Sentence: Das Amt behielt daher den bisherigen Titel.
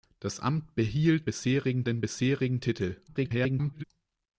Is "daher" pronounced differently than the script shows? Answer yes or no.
yes